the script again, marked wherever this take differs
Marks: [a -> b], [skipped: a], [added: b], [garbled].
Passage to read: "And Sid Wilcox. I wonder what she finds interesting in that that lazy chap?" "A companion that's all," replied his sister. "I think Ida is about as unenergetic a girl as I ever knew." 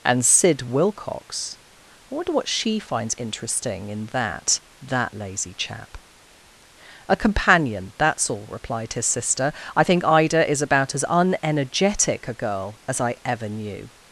"And Sid Wilcox. I wonder what she finds interesting in that that lazy chap?" "A companion that's all," replied his sister. "I think Ida is about as unenergetic a girl as I ever knew."